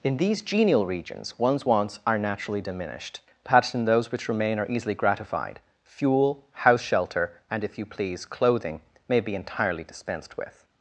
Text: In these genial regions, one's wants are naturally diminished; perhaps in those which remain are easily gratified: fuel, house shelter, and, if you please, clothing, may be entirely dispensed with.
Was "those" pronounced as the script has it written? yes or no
yes